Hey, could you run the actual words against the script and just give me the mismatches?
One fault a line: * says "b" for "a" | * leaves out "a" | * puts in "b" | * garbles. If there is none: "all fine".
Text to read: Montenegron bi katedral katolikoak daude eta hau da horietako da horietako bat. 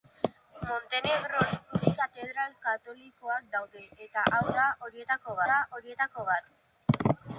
all fine